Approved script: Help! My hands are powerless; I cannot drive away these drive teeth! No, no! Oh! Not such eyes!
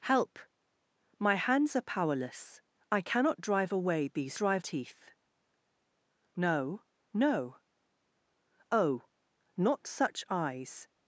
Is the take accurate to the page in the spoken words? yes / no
yes